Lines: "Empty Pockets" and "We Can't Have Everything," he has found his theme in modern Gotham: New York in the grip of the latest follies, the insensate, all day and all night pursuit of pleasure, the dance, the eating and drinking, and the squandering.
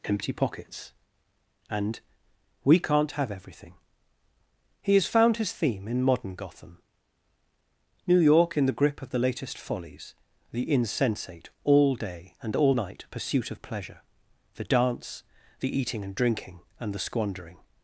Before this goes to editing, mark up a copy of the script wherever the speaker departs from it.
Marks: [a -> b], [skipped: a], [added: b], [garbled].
"Empty Pockets" and "We Can't Have Everything," he has found his theme in modern Gotham: New York in the grip of the latest follies, the insensate, all day and all night pursuit of pleasure, the dance, the eating and drinking, and the squandering.